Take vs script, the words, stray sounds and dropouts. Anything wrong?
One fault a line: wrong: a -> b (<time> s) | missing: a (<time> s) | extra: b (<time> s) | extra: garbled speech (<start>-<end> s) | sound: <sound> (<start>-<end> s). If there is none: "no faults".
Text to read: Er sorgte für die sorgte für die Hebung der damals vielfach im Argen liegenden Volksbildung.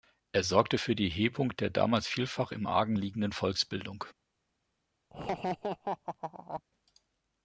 missing: sorgte für die (1.1 s)
sound: laugh (5.1-6.6 s)